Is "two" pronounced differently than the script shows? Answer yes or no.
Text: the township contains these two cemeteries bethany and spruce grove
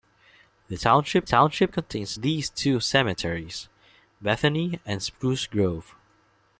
no